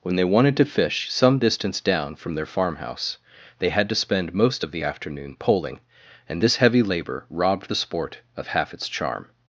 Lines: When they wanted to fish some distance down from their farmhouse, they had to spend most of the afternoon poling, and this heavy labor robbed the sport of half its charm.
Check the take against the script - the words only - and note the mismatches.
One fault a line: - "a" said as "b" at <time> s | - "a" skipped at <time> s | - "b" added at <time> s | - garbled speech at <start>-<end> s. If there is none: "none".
none